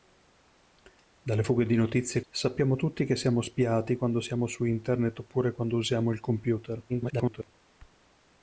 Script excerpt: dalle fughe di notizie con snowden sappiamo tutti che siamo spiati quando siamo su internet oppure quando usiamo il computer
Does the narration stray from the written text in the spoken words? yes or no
yes